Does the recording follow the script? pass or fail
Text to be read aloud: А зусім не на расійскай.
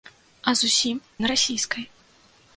fail